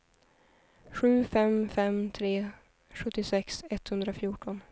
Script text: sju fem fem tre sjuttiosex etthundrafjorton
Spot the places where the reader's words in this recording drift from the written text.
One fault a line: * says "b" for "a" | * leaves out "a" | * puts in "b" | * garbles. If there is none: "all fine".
all fine